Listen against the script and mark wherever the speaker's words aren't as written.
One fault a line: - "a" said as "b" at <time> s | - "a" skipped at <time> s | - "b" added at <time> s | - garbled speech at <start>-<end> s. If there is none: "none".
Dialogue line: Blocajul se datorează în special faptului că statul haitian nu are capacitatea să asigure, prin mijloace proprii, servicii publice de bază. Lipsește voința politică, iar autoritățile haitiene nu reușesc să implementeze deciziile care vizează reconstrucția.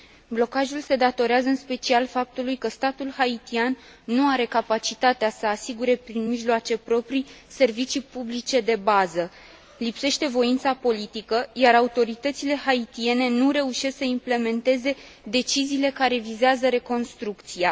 none